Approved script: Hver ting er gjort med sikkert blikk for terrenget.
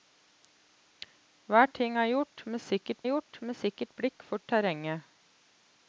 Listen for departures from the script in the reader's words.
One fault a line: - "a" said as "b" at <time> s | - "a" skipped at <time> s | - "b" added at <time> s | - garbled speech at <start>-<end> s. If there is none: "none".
- "gjort med sikkert" added at 3.1 s